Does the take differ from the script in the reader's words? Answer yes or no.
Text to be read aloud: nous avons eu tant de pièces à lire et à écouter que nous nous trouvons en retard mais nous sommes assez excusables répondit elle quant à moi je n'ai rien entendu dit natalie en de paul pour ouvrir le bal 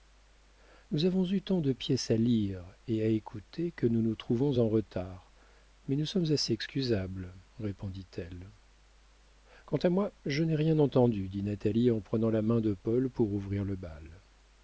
yes